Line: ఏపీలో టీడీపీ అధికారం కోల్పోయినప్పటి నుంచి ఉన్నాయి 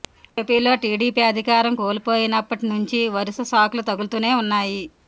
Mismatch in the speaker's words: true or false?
true